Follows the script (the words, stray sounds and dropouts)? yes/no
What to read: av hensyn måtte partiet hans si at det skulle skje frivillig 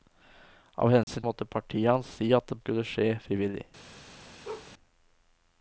no